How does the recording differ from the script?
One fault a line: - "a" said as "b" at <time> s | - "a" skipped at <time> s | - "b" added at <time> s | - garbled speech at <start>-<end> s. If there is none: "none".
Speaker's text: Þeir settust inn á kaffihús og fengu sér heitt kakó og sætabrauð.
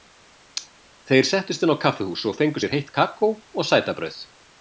none